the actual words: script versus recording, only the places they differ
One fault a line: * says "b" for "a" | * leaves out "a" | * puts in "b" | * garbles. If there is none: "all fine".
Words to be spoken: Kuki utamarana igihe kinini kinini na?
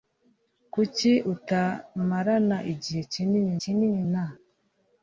all fine